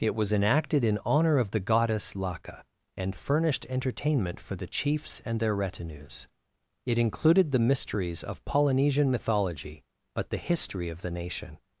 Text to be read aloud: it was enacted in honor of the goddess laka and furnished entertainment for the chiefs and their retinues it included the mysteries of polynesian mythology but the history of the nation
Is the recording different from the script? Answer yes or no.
no